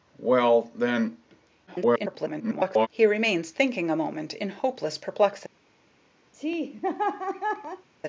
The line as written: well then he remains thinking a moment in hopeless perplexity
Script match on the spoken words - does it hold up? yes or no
no